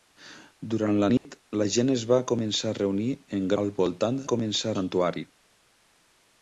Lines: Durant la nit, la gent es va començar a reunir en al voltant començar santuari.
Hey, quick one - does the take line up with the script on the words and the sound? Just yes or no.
no